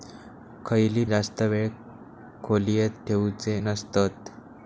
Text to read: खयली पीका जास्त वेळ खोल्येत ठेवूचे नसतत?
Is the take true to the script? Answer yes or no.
no